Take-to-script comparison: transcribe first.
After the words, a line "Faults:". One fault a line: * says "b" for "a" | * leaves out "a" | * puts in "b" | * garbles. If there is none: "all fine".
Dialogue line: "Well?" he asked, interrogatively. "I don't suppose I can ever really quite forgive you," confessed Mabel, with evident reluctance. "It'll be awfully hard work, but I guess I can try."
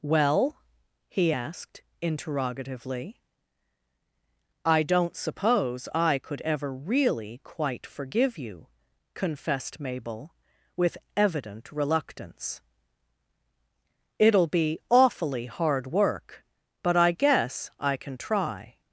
"Well?" he asked, interrogatively. "I don't suppose I could ever really quite forgive you," confessed Mabel, with evident reluctance. "It'll be awfully hard work, but I guess I can try."
Faults:
* says "could" for "can"